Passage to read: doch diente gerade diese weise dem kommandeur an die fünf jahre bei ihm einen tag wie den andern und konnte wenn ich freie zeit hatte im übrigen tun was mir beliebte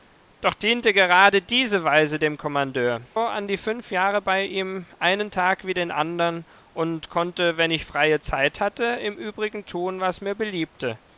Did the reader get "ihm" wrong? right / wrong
right